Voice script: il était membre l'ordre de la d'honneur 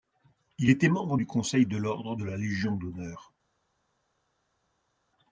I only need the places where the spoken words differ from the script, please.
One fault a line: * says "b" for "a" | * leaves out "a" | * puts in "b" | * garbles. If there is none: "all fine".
* puts in "du conseil de"
* puts in "légion"